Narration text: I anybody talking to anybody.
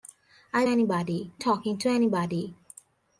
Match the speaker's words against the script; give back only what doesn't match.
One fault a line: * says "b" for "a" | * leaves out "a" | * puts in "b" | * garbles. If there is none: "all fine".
all fine